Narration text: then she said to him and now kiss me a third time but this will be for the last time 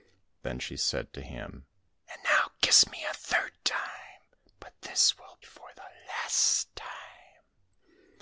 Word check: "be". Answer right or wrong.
wrong